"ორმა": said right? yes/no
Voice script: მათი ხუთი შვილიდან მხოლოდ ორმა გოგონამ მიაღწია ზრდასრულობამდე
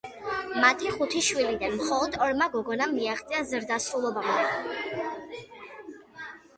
yes